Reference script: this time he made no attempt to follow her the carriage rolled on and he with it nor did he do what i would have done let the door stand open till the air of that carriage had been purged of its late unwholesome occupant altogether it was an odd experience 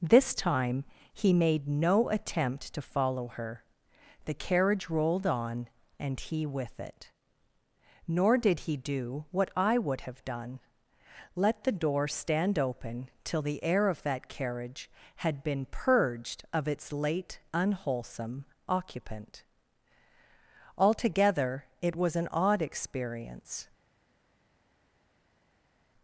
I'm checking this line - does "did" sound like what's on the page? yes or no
yes